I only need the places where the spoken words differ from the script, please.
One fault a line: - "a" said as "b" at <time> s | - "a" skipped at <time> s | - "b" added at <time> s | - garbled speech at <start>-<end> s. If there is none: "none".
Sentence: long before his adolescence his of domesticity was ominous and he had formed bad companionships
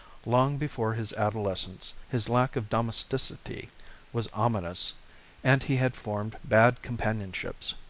- "lack" added at 2.3 s